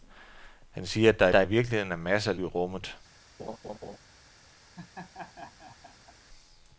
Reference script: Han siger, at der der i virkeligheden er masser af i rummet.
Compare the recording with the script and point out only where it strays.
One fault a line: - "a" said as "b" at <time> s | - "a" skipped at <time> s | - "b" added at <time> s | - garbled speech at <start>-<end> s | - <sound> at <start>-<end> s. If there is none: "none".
- laugh at 3.4-4.0 s
- laugh at 4.8-6.2 s